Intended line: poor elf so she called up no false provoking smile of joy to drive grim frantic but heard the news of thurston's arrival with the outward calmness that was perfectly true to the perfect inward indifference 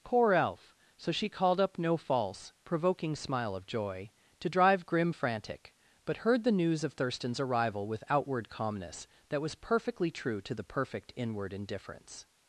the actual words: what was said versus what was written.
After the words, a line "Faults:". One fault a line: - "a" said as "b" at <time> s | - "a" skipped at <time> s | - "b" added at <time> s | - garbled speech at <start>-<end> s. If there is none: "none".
poor elf so she called up no false provoking smile of joy to drive grim frantic but heard the news of thurston's arrival with outward calmness that was perfectly true to the perfect inward indifference
Faults:
- "the" skipped at 8.0 s